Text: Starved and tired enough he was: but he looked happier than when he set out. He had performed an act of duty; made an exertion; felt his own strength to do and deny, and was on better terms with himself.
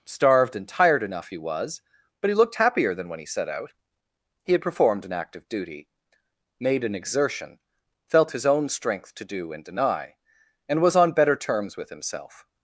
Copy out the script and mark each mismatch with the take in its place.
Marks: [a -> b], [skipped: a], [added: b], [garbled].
Starved and tired enough he was: but he looked happier than when he set out. He had performed an act of duty; made an exertion; felt his own strength to do and deny, and was on better terms with himself.